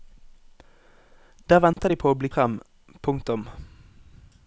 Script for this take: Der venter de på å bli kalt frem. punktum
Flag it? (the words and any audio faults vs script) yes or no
yes